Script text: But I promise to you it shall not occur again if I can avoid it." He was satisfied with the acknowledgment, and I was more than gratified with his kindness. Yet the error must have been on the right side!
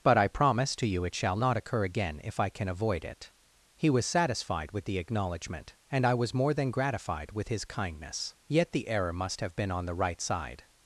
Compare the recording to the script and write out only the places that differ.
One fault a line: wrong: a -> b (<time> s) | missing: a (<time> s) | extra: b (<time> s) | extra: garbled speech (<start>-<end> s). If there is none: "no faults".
no faults